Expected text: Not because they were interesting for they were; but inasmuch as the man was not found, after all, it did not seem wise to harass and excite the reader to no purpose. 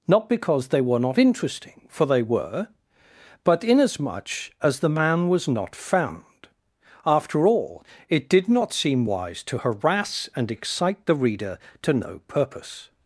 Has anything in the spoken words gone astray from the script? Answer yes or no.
yes